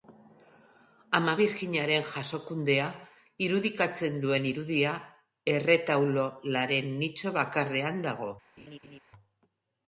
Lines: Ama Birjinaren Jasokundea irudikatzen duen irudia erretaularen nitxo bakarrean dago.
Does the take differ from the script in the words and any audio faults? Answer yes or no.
yes